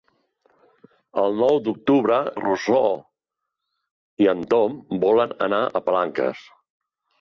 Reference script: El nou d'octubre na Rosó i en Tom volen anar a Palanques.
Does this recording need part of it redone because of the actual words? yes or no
yes